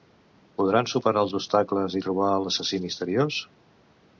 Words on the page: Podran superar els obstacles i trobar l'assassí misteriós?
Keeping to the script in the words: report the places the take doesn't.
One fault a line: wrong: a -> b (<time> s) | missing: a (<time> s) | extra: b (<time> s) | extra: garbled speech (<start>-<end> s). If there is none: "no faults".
no faults